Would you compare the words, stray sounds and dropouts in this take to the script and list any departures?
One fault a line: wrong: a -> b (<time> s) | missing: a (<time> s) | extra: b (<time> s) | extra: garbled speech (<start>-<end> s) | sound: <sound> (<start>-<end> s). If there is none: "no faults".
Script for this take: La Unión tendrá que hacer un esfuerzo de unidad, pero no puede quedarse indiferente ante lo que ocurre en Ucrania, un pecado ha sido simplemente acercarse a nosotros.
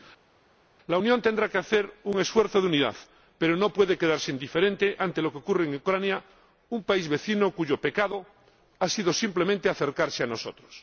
extra: país vecino cuyo (6.8 s)